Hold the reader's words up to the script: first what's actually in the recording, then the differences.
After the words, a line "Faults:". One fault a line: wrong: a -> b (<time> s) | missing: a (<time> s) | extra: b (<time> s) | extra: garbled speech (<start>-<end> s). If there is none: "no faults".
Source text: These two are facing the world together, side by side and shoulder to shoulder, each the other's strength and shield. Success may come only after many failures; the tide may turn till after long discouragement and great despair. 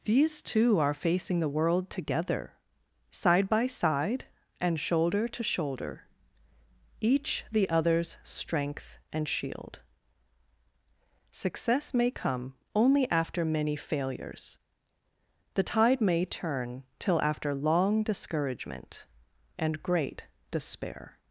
These two are facing the world together, side by side and shoulder to shoulder, each the other's strength and shield. Success may come only after many failures; the tide may turn till after long discouragement and great despair.
Faults:
no faults